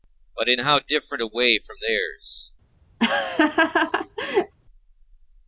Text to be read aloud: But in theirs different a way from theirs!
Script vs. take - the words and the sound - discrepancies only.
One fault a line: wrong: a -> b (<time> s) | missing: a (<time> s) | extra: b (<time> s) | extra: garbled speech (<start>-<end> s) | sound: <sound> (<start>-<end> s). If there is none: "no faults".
wrong: theirs -> how (0.6 s)
sound: laugh (3.0-4.5 s)